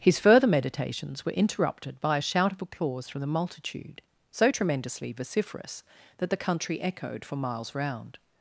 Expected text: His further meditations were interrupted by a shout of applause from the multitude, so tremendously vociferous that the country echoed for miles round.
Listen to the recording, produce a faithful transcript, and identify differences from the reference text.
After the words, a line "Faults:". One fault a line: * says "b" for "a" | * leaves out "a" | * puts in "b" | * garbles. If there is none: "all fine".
His further meditations were interrupted by a shout of applause from the multitude, so tremendously vociferous that the country echoed for miles round.
Faults:
all fine